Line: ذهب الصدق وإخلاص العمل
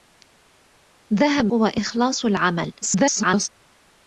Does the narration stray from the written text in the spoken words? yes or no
yes